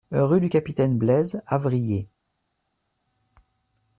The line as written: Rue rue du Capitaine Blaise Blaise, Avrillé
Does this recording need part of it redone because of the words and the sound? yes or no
yes